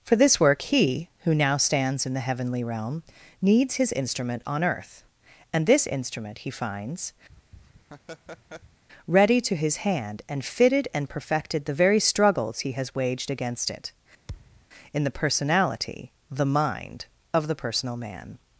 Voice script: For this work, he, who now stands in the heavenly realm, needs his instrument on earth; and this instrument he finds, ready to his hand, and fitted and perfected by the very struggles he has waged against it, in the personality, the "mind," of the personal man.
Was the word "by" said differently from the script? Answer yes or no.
yes